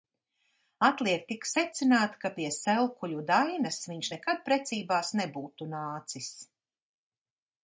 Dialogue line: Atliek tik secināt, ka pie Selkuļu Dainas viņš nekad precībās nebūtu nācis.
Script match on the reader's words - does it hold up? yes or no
yes